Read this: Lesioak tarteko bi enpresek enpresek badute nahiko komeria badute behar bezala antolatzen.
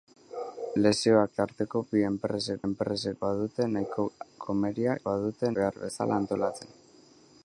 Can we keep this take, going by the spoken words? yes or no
yes